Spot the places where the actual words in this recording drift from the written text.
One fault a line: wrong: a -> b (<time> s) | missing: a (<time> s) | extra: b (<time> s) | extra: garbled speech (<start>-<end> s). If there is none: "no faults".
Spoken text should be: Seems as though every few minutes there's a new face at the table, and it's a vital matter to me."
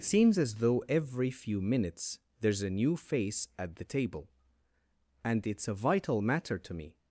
no faults